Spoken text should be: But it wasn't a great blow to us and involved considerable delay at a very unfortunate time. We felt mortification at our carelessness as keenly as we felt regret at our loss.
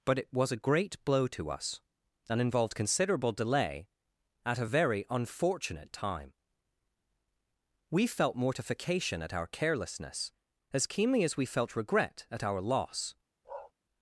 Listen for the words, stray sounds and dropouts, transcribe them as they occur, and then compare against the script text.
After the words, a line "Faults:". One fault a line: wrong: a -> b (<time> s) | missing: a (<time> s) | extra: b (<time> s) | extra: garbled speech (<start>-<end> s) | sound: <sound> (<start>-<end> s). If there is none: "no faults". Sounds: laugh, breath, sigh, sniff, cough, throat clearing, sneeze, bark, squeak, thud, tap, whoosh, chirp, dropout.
But it was a great blow to us and involved considerable delay at a very unfortunate time. We felt mortification at our carelessness as keenly as we felt regret at our loss.
Faults:
wrong: wasn't -> was (0.3 s)
sound: bark (13.4-13.7 s)